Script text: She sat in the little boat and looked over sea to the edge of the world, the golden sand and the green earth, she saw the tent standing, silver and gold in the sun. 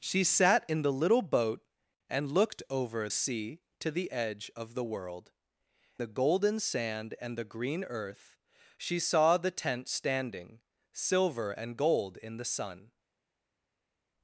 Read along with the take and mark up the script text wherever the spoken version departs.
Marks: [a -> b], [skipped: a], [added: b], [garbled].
She sat in the little boat and looked over sea to the edge of the world, the golden sand and the green earth, she saw the tent standing, silver and gold in the sun.